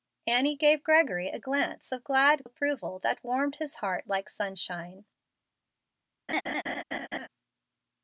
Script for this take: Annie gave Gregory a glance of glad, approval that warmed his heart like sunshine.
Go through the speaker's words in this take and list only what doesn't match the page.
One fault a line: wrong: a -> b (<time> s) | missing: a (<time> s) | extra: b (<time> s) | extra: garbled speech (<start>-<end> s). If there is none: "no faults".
no faults